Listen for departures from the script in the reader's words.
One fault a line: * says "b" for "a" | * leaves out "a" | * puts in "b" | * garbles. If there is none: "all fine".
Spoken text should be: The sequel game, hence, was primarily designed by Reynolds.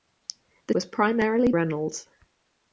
* leaves out "sequel game hence"
* leaves out "designed by"